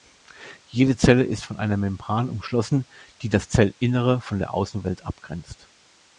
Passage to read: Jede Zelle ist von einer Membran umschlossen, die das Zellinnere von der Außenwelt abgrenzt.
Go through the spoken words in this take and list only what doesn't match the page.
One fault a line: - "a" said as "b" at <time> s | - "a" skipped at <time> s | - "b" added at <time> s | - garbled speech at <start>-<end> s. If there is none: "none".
none